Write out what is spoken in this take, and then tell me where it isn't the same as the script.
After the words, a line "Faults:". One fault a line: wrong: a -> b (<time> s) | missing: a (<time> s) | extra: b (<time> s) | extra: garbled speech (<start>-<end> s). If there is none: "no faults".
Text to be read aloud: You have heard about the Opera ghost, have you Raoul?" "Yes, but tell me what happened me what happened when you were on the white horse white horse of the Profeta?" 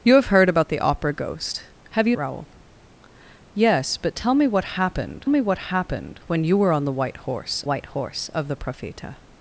You have heard about the Opera ghost, have you Raoul?" "Yes, but tell me what happened me what happened when you were on the white horse white horse of the Profeta?"
Faults:
no faults